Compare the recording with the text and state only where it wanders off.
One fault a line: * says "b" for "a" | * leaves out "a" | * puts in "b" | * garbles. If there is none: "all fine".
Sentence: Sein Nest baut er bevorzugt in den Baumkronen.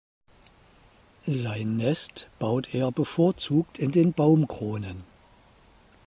all fine